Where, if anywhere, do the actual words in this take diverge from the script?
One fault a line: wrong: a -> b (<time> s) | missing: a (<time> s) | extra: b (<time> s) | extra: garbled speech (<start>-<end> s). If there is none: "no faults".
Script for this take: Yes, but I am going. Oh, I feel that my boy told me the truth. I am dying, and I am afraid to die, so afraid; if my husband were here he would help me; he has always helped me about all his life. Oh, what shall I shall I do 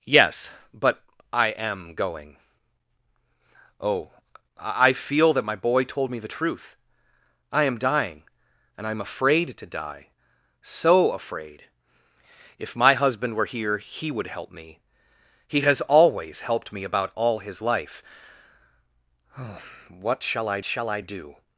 no faults